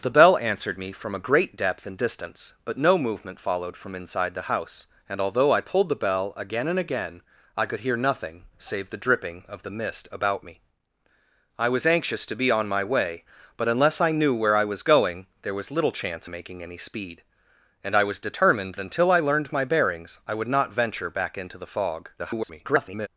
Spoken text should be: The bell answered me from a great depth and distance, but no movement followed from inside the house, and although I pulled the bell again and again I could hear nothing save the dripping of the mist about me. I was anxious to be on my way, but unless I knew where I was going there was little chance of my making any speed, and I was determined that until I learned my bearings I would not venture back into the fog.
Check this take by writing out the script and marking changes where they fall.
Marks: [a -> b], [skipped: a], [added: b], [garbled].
The bell answered me from a great depth and distance, but no movement followed from inside the house, and although I pulled the bell again and again I could hear nothing save the dripping of the mist about me. I was anxious to be on my way, but unless I knew where I was going there was little chance [skipped: of my] making any speed, and I was determined [skipped: that] until I learned my bearings I would not venture back into the fog. [garbled]